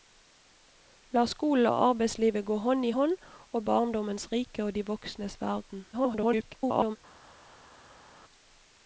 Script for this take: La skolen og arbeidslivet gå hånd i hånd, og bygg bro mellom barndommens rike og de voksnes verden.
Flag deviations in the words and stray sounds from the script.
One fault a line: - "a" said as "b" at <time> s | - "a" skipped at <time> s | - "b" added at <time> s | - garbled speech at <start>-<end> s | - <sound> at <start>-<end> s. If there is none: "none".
- "bygg bro mellom" skipped at 3.6 s
- garbled speech at 5.9-7.0 s